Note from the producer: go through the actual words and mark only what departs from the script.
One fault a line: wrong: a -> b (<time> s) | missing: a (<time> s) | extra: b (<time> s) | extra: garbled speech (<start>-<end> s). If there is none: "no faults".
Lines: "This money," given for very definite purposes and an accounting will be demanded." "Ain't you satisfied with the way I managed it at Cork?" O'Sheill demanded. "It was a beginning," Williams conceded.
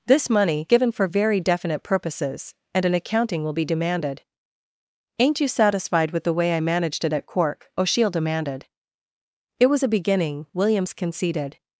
no faults